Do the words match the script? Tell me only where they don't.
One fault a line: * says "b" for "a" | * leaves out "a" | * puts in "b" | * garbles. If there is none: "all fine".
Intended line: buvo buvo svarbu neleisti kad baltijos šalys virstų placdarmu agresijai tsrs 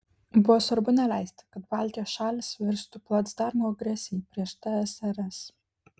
* leaves out "buvo"
* puts in "prieš"